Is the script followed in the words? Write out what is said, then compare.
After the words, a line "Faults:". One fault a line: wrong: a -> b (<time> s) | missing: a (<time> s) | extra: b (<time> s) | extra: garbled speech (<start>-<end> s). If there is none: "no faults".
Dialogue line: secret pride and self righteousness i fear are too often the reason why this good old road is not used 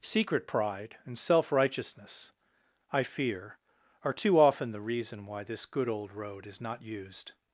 secret pride and self righteousness i fear are too often the reason why this good old road is not used
Faults:
no faults